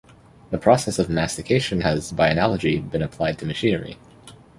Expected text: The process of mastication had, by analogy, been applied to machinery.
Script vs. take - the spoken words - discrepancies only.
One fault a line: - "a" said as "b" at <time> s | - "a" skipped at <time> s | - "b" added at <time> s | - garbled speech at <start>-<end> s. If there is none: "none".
- "had" said as "has" at 1.8 s